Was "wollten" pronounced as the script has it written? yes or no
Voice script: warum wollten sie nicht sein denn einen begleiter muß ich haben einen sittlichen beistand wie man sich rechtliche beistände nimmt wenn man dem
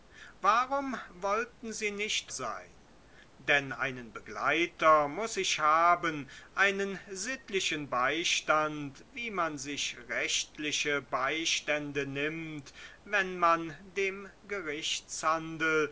yes